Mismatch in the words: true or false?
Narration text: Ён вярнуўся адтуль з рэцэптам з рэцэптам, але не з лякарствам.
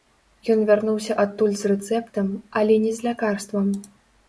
true